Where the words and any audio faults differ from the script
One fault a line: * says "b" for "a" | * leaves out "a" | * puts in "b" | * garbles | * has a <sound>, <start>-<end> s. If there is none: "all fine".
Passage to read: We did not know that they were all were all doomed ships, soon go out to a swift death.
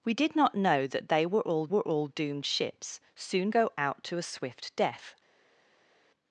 all fine